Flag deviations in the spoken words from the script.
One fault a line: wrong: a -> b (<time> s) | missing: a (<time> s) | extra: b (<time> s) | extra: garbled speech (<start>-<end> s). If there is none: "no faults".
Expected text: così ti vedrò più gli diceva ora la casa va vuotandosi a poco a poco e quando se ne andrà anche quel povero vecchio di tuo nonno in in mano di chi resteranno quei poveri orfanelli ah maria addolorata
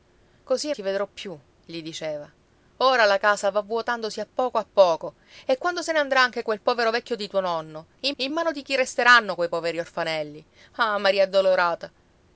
no faults